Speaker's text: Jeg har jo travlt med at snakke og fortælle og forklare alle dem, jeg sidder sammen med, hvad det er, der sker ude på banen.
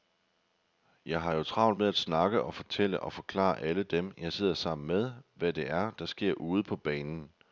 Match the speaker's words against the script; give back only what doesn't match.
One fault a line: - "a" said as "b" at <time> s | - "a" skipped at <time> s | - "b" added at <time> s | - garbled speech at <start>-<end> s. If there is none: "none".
none